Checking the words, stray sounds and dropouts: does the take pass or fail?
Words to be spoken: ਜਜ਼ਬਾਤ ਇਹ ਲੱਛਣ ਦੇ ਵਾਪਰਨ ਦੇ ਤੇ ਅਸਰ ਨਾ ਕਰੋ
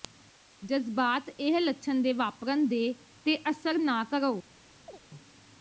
fail